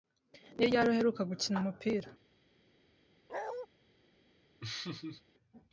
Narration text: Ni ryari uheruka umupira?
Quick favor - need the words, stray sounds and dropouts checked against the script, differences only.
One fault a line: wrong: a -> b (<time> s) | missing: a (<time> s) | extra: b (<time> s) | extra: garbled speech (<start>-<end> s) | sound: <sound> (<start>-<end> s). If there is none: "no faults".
extra: gukina (1.3 s)
sound: bark (3.3-3.7 s)
sound: laugh (4.6-5.2 s)